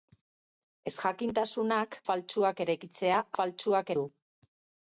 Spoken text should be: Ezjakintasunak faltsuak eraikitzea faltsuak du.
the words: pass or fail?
pass